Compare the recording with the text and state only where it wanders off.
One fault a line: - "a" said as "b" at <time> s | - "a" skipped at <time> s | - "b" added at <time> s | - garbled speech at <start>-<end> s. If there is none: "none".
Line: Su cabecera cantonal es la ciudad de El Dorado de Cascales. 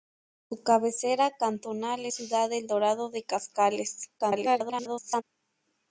- "es la" skipped at 2.1 s
- garbled speech at 4.2-5.2 s